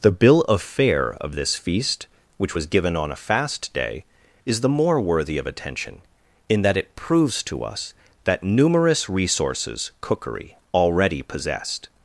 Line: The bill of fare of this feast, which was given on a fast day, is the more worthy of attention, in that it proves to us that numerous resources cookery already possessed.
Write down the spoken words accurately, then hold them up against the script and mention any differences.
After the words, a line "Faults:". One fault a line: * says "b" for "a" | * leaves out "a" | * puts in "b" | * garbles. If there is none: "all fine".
The bill of fare of this feast, which was given on a fast day, is the more worthy of attention, in that it proves to us that numerous resources cookery already possessed.
Faults:
all fine